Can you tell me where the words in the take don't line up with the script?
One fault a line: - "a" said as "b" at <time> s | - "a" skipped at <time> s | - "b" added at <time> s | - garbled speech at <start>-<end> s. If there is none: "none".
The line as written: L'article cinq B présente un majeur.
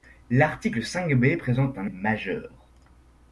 none